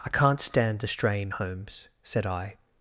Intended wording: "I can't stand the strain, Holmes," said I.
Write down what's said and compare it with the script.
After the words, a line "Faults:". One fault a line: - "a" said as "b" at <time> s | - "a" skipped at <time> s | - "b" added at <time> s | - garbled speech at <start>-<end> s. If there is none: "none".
"I can't stand the strain, Holmes," said I.
Faults:
none